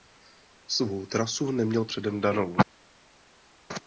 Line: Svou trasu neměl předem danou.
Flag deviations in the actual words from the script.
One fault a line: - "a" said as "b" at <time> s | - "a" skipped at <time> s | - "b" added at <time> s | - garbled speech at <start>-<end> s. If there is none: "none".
none